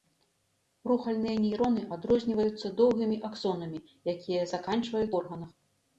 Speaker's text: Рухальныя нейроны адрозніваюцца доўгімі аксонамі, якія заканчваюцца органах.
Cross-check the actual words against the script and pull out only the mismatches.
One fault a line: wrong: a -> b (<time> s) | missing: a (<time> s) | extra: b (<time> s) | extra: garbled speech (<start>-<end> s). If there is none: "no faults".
no faults